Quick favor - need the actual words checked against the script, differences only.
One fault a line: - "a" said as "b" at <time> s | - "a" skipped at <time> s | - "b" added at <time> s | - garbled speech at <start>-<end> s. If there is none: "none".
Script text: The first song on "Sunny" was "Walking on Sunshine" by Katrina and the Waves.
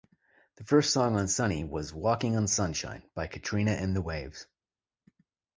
none